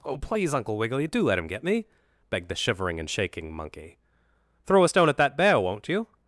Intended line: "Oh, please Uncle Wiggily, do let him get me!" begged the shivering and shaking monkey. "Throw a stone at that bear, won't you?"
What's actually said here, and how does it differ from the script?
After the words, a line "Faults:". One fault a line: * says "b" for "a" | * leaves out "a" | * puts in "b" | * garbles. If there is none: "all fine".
"Oh, please Uncle Wiggily, do let him get me!" begged the shivering and shaking monkey. "Throw a stone at that bear, won't you?"
Faults:
all fine